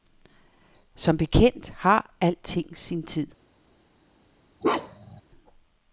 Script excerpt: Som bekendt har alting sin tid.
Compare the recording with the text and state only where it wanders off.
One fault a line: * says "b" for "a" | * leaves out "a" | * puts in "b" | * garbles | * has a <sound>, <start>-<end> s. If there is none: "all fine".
* has a bark, 4.6-5.2 s